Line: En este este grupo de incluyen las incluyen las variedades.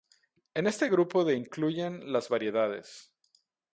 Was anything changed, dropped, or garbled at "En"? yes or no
no